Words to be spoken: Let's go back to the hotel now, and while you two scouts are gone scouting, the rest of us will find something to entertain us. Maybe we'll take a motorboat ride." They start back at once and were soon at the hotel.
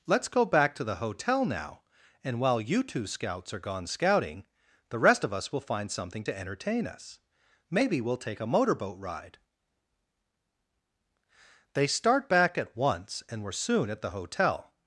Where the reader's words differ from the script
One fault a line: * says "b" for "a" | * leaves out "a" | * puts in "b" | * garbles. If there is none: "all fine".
all fine